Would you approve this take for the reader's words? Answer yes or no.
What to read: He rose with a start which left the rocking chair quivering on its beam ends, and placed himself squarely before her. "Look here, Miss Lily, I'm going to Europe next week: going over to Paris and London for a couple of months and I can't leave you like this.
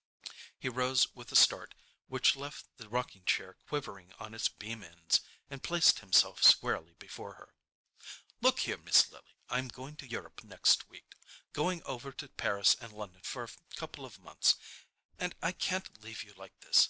yes